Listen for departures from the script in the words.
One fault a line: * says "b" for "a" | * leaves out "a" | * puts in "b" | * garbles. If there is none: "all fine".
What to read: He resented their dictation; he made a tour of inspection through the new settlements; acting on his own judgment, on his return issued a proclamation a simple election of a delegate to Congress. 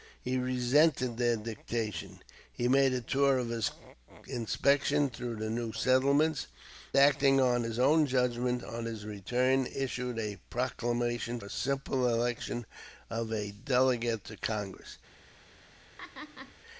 all fine